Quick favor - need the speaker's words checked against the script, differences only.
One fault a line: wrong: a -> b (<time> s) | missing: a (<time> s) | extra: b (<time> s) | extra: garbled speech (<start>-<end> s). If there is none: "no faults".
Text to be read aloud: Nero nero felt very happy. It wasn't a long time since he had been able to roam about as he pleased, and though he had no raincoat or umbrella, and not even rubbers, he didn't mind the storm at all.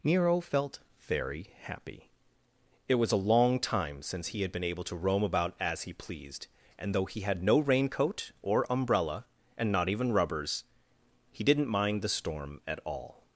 missing: nero (0.4 s)
wrong: wasn't -> was (3.0 s)